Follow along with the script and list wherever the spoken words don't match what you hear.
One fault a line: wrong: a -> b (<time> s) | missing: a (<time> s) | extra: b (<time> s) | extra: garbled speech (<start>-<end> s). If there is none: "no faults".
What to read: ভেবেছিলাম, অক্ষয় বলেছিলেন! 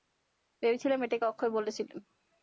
extra: এটাকে (1.0 s)